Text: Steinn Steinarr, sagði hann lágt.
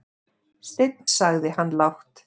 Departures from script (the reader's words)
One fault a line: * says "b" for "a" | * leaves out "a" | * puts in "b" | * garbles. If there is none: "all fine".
* leaves out "Steinarr"